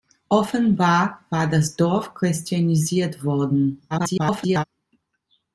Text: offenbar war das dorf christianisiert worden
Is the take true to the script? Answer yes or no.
no